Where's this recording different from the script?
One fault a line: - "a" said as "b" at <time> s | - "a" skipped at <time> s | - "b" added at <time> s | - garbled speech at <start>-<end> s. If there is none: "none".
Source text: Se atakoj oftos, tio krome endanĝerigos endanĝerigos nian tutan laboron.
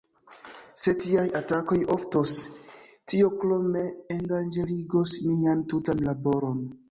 - "tiaj" added at 1.1 s
- "endanĝerigos" skipped at 5.2 s